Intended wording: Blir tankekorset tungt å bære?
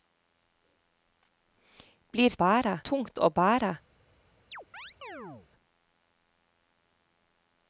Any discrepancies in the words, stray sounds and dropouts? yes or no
yes